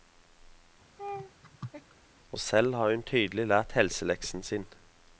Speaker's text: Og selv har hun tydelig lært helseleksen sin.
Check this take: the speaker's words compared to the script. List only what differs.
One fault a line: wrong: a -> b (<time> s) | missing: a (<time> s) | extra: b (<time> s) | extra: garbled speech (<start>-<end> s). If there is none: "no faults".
no faults